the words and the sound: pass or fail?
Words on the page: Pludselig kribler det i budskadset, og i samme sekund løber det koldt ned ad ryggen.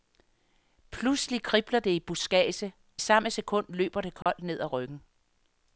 fail